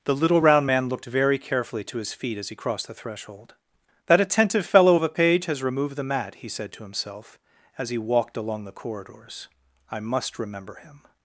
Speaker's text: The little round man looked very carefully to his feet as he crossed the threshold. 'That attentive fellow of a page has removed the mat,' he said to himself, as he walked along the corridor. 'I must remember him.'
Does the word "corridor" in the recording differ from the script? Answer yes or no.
yes